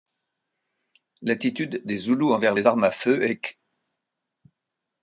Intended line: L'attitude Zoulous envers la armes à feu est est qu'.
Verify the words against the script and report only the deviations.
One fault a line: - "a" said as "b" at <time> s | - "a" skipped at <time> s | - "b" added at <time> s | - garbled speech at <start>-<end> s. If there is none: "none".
- "des" added at 1.9 s
- "la" said as "les" at 2.5 s
- "est" skipped at 3.4 s